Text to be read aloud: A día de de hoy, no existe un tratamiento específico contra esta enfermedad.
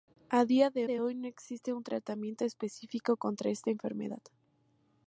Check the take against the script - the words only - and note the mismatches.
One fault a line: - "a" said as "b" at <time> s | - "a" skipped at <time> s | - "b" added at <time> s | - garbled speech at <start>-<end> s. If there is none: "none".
none